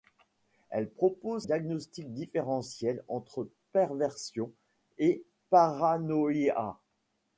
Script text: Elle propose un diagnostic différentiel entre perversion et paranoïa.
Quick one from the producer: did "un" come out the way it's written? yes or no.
no